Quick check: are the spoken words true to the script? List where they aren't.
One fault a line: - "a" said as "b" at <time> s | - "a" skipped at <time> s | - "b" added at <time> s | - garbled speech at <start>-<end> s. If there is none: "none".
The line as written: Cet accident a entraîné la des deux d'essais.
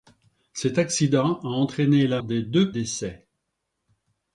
none